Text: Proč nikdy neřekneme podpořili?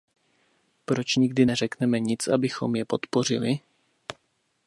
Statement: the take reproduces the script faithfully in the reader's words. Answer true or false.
false